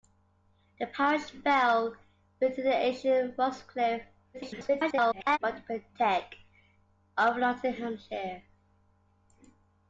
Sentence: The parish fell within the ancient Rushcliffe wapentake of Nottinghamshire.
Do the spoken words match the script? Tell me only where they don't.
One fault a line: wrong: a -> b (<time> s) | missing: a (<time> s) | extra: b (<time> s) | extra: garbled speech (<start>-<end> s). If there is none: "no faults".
extra: garbled speech (4.3-5.4 s)